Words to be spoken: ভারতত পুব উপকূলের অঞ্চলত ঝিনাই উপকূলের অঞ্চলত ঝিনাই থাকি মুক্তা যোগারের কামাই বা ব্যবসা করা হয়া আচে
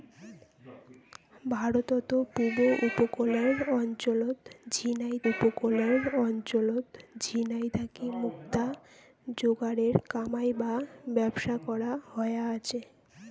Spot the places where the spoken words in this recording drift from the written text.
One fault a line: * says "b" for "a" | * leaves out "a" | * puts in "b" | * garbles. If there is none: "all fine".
all fine